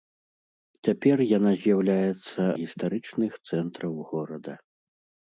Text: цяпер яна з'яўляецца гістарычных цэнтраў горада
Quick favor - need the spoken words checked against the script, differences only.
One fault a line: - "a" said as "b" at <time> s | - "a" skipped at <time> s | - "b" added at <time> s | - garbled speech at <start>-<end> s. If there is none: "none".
none